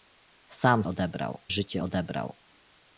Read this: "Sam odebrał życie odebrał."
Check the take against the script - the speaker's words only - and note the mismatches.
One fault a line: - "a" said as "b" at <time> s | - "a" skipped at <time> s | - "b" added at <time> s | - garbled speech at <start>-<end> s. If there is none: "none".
none